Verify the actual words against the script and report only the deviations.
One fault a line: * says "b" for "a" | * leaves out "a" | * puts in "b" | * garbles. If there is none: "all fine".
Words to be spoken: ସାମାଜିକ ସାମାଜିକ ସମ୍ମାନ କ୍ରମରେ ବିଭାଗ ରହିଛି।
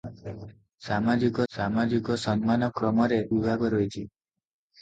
all fine